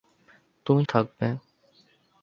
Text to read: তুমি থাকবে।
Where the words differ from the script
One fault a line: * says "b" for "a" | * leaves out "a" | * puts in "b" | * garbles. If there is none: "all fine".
all fine